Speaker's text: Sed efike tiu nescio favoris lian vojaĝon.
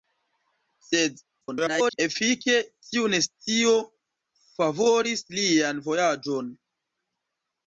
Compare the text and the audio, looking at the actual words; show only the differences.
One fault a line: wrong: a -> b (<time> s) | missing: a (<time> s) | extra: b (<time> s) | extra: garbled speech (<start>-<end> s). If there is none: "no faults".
extra: garbled speech (1.4-2.0 s)